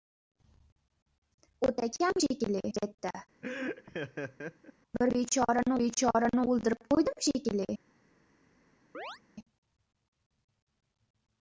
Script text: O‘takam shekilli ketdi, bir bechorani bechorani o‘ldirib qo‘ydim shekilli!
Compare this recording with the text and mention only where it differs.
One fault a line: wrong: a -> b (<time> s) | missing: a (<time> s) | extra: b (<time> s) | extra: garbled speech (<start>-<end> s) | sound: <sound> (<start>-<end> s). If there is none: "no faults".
sound: laugh (3.4-4.7 s)
sound: chirp (8.9-9.2 s)